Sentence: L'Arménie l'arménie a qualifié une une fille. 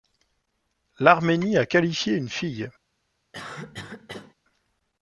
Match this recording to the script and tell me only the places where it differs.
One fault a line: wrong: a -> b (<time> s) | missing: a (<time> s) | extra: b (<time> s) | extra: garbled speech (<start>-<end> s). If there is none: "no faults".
missing: l'arménie (1.6 s)
missing: une (2.3 s)